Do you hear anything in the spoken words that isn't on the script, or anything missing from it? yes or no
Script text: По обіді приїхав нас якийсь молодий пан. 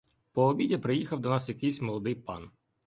yes